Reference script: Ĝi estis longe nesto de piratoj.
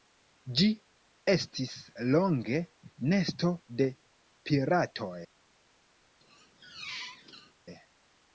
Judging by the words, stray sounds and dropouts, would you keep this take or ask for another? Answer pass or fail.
fail